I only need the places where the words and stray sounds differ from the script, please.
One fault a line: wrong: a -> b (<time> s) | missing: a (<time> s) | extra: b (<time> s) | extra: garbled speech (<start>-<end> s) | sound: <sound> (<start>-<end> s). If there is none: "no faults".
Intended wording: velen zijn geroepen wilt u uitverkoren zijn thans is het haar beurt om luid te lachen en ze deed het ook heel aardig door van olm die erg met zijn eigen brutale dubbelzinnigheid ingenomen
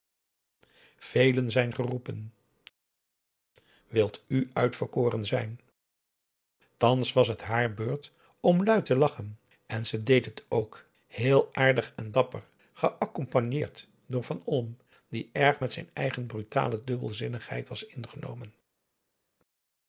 wrong: is -> was (7.1 s)
extra: en dapper geaccompagneerd (11.9 s)
extra: was (17.7 s)